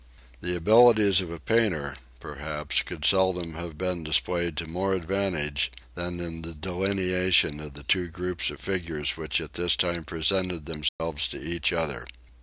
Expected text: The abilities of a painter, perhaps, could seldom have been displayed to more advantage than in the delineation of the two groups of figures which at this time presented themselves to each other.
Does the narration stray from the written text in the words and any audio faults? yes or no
yes